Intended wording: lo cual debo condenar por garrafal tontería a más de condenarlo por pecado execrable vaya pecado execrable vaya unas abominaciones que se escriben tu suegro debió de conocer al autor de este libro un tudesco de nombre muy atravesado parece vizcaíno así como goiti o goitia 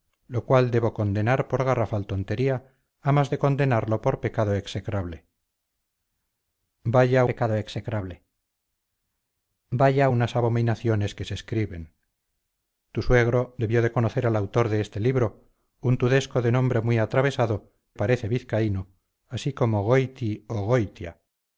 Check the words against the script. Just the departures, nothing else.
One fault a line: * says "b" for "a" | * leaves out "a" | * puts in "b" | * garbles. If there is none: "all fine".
all fine